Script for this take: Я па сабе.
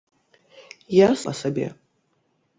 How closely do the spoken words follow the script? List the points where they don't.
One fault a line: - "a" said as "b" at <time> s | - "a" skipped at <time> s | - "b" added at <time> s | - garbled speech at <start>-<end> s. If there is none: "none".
none